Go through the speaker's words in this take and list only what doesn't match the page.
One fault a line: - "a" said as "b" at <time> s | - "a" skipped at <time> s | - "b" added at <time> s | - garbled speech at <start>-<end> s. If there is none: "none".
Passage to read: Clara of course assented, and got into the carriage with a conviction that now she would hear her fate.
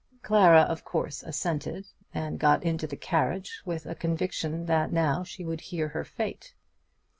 none